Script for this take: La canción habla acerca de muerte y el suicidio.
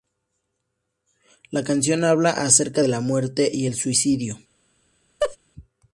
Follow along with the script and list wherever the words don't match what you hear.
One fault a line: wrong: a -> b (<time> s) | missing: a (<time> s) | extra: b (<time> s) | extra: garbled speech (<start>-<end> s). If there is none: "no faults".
extra: la (2.9 s)